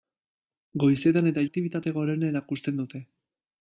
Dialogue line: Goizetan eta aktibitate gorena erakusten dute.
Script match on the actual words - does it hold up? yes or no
yes